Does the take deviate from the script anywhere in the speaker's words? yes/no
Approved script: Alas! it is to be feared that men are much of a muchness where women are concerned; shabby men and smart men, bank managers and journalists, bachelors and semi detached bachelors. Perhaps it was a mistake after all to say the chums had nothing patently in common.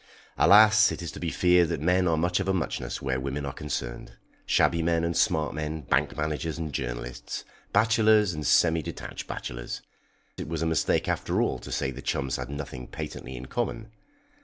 yes